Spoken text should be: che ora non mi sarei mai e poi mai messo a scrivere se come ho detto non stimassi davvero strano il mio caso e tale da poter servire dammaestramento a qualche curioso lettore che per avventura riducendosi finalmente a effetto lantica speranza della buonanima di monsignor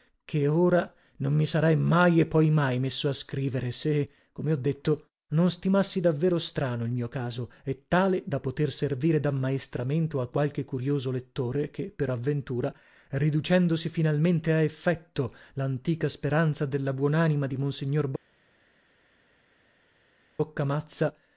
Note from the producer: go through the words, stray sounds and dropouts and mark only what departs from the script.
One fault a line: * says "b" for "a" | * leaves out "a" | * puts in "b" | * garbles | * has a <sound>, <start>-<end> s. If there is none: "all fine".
all fine